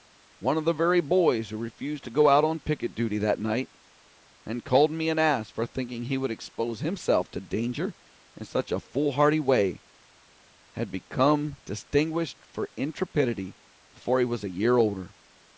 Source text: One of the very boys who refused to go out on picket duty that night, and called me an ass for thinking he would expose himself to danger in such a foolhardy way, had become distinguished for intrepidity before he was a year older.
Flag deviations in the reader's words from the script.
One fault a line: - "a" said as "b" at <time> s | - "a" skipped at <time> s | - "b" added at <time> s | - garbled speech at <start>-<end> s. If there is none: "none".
none